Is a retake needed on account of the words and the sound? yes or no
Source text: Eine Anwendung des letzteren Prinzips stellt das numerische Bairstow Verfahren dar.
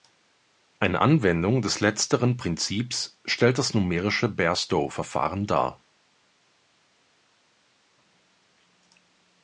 no